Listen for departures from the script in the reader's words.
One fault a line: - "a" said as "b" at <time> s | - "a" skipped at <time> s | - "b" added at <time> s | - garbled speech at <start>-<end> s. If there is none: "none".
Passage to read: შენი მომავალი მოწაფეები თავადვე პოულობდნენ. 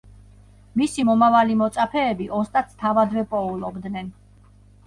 - "შენი" said as "მისი" at 0.8 s
- "ოსტატს" added at 2.4 s